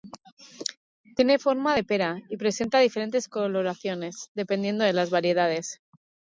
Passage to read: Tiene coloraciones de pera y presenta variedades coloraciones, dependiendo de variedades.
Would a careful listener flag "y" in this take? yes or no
no